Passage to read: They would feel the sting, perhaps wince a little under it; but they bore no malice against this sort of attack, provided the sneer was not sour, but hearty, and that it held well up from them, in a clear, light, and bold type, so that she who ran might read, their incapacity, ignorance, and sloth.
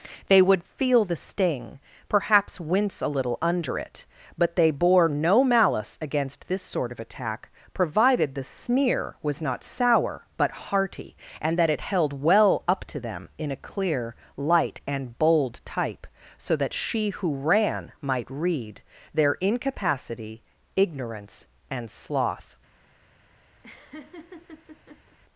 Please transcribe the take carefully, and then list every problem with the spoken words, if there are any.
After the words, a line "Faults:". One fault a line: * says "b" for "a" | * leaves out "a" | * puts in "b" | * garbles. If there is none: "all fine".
They would feel the sting, perhaps wince a little under it; but they bore no malice against this sort of attack, provided the sneer was not sour, but hearty, and that it held well up to them, in a clear, light, and bold type, so that she who ran might read, their incapacity, ignorance, and sloth.
Faults:
* says "to" for "from"